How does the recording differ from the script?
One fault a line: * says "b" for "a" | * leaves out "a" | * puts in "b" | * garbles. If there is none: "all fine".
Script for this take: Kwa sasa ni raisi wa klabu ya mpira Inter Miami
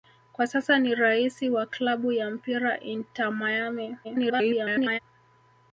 * garbles